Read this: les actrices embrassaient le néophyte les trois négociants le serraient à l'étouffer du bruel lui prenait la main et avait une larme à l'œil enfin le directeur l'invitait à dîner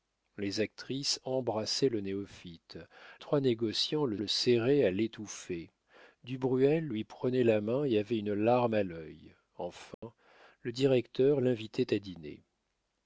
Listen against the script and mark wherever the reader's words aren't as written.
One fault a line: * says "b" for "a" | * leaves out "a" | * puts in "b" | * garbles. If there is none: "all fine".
* leaves out "les"
* puts in "le"